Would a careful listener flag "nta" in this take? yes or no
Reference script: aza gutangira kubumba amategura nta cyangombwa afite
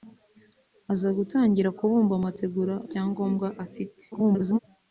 yes